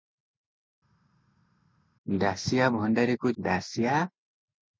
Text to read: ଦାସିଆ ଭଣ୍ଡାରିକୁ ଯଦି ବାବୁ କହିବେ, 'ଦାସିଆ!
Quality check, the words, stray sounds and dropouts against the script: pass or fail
fail